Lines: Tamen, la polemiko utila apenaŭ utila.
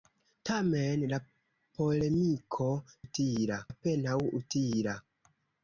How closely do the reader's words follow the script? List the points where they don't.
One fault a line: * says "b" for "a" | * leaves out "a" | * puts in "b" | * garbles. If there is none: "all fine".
all fine